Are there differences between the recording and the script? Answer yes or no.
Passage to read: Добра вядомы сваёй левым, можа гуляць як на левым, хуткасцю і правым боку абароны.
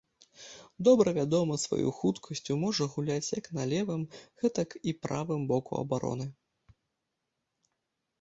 yes